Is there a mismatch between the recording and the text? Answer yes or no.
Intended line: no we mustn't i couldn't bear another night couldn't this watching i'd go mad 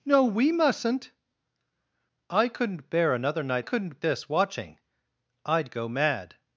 no